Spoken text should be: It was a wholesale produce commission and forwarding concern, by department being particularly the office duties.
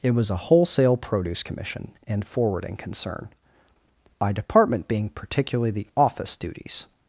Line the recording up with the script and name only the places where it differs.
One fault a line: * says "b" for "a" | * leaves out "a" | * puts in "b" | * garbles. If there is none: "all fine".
all fine